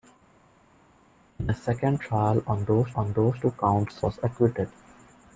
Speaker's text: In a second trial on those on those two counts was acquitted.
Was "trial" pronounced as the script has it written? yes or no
yes